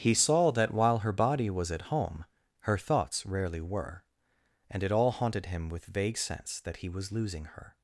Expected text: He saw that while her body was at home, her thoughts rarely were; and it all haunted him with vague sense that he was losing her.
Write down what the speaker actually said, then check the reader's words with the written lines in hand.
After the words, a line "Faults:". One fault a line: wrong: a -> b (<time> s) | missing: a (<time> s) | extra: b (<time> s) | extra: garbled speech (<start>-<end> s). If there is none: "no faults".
He saw that while her body was at home, her thoughts rarely were; and it all haunted him with vague sense that he was losing her.
Faults:
no faults